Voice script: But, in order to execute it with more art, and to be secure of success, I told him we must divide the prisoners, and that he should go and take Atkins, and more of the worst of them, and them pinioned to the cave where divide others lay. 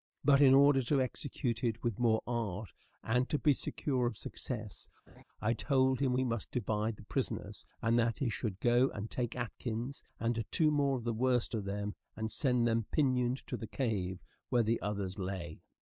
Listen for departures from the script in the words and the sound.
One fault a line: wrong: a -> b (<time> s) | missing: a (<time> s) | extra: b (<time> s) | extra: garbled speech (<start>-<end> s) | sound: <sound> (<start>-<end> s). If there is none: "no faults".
sound: laugh (5.1-5.2 s)
extra: two (10.5 s)
extra: send (12.3 s)
wrong: divide -> the (14.6 s)